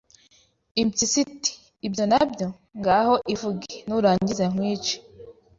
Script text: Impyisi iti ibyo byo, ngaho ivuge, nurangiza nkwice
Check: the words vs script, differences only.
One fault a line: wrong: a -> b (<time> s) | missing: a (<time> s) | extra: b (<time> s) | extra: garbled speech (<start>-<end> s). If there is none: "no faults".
extra: na (2.1 s)